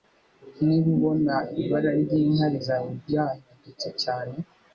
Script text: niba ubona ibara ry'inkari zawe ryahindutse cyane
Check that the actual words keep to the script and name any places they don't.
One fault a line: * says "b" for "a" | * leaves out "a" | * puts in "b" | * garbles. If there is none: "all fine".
all fine